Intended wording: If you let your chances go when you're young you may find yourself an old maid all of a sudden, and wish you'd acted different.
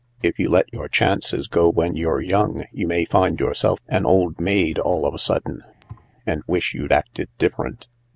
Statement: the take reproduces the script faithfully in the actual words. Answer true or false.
true